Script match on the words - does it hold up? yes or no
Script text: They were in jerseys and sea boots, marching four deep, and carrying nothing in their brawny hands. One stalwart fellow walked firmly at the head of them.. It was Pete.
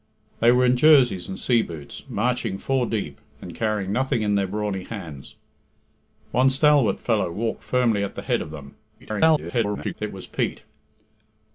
no